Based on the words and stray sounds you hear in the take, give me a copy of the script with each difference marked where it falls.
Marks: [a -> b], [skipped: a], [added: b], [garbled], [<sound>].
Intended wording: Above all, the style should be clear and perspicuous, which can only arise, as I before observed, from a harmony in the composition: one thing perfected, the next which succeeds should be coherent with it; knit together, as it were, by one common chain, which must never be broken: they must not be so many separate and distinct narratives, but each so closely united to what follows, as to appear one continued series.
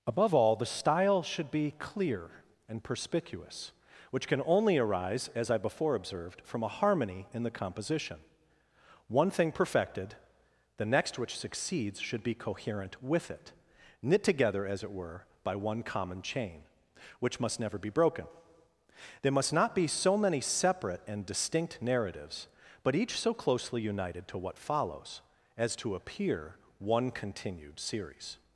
Above all, the style should be clear and perspicuous, which can only arise, as I before observed, from a harmony in the composition: one thing perfected, the next which succeeds should be coherent with it; knit together, as it were, by one common chain, which must never be broken: [they -> there] must not be so many separate and distinct narratives, but each so closely united to what follows, as to appear one continued series.